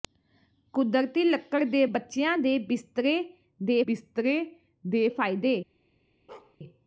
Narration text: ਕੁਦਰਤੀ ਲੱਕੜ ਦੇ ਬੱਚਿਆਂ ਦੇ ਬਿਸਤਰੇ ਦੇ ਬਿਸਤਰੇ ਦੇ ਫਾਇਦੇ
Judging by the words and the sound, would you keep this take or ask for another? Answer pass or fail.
fail